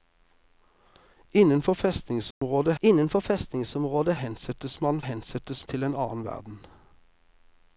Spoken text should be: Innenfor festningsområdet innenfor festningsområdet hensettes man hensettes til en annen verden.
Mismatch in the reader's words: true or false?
false